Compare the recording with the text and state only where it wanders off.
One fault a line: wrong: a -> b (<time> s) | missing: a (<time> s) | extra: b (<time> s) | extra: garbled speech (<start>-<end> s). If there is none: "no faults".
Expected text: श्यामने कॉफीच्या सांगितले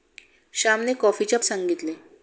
no faults